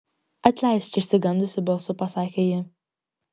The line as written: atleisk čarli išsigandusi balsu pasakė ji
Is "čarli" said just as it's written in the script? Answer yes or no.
no